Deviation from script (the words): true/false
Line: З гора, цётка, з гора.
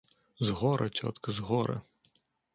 false